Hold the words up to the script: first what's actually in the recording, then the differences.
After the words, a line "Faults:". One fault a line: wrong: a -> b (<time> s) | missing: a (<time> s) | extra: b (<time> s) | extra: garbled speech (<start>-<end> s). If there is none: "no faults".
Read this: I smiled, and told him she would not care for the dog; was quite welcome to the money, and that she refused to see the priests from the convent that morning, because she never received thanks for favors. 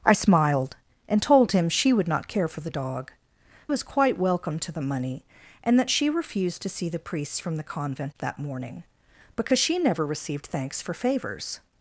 I smiled, and told him she would not care for the dog; was quite welcome to the money, and that she refused to see the priests from the convent that morning, because she never received thanks for favors.
Faults:
no faults